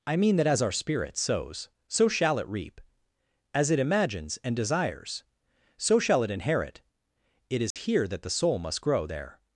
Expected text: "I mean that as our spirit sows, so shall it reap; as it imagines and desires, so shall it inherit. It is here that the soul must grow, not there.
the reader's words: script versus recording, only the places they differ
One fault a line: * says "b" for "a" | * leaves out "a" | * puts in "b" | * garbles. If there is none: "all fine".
* leaves out "not"